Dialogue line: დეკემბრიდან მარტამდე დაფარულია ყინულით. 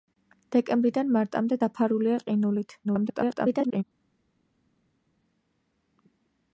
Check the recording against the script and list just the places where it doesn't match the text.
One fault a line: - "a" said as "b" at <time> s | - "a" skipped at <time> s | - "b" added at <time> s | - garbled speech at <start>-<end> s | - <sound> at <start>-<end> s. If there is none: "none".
- garbled speech at 2.8-3.8 s